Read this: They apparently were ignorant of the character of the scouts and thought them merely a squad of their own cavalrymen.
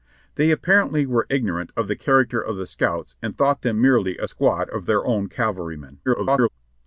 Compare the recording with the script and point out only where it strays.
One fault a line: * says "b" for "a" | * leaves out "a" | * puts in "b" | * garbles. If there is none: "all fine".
* garbles